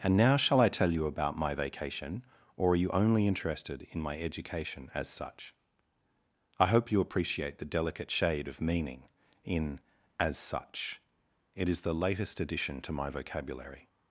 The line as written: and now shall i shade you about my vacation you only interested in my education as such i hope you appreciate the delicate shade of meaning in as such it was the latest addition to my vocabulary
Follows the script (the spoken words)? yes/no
no